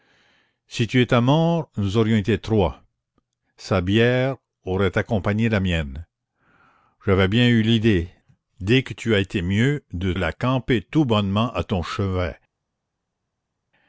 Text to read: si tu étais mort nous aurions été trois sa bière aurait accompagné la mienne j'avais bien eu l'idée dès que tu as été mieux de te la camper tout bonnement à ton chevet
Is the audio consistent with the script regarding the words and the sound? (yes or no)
no